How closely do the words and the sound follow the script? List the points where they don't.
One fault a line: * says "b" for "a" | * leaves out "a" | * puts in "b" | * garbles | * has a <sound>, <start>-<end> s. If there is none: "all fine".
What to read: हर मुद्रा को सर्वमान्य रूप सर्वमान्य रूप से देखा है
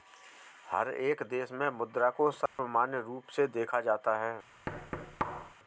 * puts in "एक देश में"
* has a dropout, 2.5-2.6 s
* leaves out "सर्वमान्य रूप"
* puts in "जाता"
* has a thud, 4.7-5.5 s